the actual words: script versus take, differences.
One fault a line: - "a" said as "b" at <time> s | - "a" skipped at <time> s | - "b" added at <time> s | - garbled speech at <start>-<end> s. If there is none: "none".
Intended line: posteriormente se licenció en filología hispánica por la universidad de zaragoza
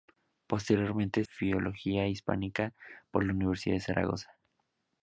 - "se licenció en" skipped at 1.2 s